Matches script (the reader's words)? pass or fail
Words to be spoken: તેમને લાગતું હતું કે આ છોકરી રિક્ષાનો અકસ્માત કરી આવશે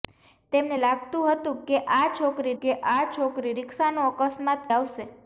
fail